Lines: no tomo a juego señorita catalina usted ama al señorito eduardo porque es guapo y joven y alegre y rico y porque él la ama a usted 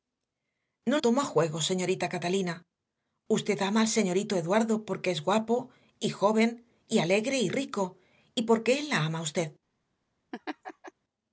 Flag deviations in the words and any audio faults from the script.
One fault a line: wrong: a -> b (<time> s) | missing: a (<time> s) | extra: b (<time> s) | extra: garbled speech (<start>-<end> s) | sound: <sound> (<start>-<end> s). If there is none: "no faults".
sound: laugh (10.3-10.9 s)